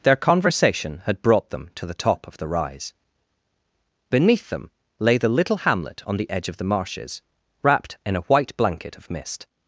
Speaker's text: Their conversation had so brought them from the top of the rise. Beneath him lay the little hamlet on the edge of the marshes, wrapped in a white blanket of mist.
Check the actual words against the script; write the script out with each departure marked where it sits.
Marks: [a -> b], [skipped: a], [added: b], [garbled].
Their conversation had [skipped: so] brought them [from -> to] the top of the rise. Beneath [him -> them] lay the little hamlet on the edge of the marshes, wrapped in a white blanket of mist.